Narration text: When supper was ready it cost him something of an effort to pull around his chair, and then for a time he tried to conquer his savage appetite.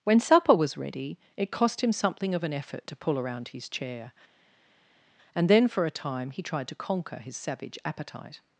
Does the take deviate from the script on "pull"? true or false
false